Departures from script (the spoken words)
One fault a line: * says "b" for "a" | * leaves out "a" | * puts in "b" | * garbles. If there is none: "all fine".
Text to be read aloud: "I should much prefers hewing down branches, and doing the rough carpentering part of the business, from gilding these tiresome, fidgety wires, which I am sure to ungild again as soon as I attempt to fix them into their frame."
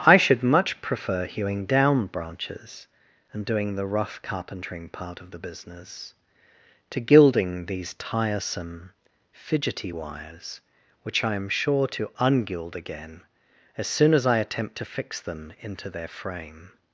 * says "prefer" for "prefers"
* says "to" for "from"